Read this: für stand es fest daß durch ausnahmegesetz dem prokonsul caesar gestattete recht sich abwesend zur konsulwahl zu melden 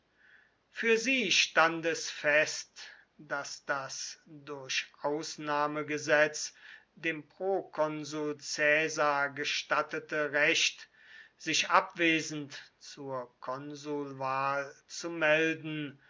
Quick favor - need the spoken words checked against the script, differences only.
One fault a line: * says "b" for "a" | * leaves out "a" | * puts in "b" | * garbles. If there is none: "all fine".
* puts in "sie"
* puts in "das"